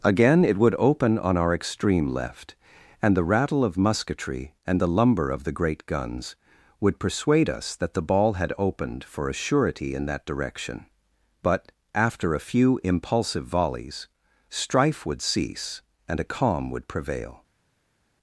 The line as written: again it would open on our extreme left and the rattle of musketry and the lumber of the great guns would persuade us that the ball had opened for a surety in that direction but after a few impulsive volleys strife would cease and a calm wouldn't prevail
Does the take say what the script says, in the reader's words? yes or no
no